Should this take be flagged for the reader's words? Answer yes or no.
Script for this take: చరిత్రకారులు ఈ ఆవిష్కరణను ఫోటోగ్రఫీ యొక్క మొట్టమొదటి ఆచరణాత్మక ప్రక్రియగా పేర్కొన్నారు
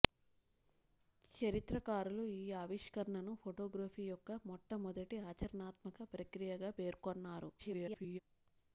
yes